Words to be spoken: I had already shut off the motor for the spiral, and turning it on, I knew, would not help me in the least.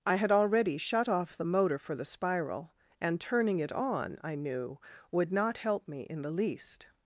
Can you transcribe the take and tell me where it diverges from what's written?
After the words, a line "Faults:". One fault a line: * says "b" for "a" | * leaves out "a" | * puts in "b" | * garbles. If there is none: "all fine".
I had already shut off the motor for the spiral, and turning it on, I knew, would not help me in the least.
Faults:
all fine